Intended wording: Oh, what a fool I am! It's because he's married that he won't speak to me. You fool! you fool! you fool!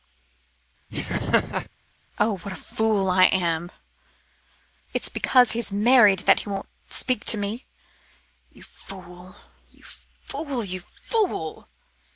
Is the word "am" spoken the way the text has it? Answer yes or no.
yes